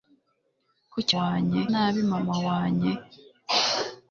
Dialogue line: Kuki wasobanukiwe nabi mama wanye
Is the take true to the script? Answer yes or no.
no